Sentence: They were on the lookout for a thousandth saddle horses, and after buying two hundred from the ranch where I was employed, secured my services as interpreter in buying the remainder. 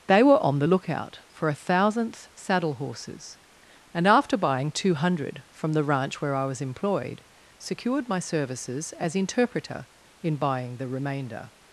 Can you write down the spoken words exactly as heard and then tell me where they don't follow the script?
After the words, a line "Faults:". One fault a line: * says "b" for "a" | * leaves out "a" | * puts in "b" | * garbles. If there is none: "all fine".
They were on the lookout for a thousandth saddle horses, and after buying two hundred from the ranch where I was employed, secured my services as interpreter in buying the remainder.
Faults:
all fine